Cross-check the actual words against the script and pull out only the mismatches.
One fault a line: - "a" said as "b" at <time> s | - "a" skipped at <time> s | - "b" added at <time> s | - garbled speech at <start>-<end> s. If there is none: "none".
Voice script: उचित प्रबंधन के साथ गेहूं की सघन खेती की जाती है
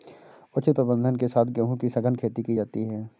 none